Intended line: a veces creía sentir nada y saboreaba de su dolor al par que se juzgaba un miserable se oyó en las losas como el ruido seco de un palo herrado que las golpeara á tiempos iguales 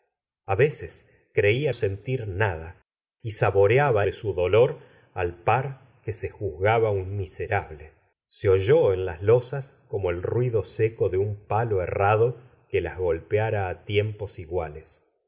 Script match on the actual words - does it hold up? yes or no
yes